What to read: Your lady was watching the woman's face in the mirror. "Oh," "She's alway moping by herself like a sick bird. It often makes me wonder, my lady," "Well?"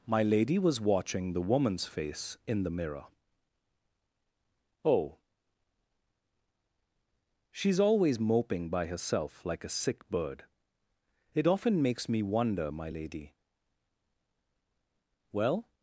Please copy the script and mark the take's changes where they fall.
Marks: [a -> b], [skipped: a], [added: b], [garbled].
[Your -> My] lady was watching the woman's face in the mirror. "Oh," "She's [alway -> always] moping by herself like a sick bird. It often makes me wonder, my lady," "Well?"